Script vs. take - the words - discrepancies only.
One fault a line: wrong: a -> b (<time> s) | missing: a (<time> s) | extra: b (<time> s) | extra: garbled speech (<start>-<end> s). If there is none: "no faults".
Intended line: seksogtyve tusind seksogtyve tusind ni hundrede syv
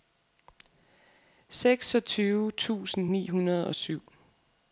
missing: seksogtyve tusind (3.1 s)
extra: og (3.7 s)